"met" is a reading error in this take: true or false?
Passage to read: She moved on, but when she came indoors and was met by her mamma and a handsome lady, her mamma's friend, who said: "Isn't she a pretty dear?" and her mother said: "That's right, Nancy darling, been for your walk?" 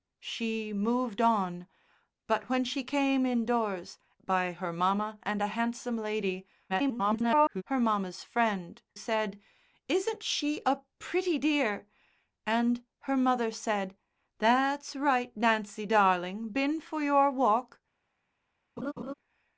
true